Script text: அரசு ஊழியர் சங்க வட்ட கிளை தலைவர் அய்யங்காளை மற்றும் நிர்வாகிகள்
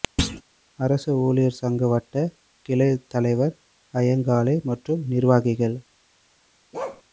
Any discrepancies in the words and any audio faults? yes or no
yes